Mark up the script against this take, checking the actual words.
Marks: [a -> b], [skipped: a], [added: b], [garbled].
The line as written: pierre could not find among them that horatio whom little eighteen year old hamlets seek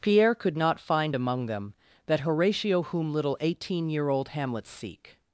pierre could not find among them that horatio whom little eighteen year old hamlets seek